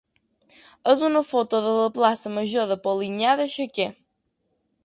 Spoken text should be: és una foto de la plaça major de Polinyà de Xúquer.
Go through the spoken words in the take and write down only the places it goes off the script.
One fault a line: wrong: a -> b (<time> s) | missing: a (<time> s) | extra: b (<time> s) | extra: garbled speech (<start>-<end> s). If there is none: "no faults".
no faults